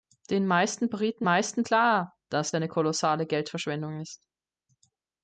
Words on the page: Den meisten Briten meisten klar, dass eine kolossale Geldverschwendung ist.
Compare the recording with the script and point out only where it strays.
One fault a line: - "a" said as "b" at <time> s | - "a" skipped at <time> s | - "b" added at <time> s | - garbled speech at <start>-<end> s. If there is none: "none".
none